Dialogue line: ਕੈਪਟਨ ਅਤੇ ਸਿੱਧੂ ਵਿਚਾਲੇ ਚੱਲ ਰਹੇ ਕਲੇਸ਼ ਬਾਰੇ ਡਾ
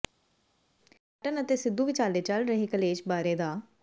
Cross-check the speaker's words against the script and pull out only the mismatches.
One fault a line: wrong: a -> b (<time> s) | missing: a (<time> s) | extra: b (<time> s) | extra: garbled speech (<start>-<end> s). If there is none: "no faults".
no faults